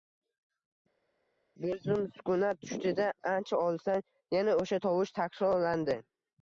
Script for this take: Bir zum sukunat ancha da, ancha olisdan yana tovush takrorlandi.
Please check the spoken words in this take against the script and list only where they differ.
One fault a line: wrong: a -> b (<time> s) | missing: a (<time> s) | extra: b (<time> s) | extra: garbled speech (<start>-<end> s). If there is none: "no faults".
wrong: ancha -> tushdi (2.7 s)
extra: o‘sha (4.6 s)